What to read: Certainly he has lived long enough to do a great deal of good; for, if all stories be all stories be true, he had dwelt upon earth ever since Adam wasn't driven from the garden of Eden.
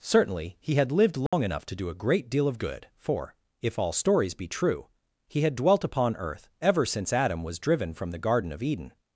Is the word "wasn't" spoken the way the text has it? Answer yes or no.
no